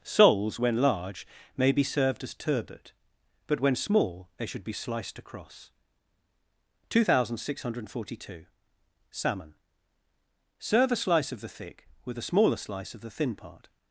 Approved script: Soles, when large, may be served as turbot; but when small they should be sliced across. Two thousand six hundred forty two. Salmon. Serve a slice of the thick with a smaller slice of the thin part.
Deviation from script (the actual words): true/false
false